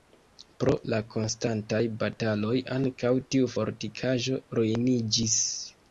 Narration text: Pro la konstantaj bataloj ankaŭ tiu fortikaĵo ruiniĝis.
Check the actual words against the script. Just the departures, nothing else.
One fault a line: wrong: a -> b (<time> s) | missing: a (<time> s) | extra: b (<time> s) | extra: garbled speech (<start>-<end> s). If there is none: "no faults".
no faults